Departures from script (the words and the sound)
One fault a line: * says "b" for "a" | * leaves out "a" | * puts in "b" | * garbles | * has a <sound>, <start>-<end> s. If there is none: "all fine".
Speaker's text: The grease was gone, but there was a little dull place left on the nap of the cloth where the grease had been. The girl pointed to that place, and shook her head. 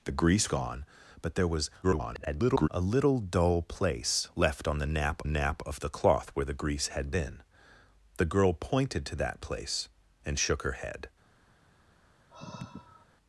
* leaves out "was"
* garbles
* puts in "nap"
* has a sigh, 12.3-13.1 s